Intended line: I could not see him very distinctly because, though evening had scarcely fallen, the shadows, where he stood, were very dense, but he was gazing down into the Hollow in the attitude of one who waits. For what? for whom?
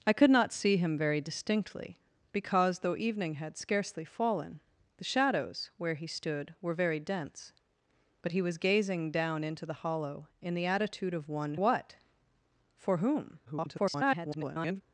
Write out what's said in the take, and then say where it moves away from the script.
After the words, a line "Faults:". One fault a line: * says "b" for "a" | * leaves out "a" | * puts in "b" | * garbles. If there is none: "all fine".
I could not see him very distinctly because, though evening had scarcely fallen, the shadows, where he stood, were very dense, but he was gazing down into the Hollow in the attitude of one what? for whom? [garbled]
Faults:
* leaves out "who waits For"
* garbles